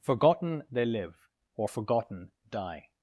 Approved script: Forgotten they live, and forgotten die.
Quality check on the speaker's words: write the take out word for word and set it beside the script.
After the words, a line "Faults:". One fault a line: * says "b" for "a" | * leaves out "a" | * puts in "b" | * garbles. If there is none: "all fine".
Forgotten they live, or forgotten die.
Faults:
* says "or" for "and"